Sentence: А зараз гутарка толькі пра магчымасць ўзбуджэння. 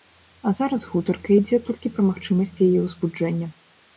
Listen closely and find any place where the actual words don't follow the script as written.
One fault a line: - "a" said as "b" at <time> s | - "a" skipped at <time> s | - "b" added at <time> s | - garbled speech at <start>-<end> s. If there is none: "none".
- "ідзе" added at 1.4 s
- "яе" added at 2.7 s